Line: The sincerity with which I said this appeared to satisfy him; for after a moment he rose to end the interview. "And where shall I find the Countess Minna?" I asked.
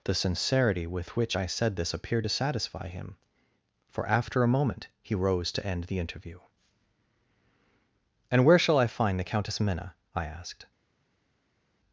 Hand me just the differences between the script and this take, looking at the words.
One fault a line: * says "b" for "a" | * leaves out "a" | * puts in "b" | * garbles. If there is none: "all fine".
all fine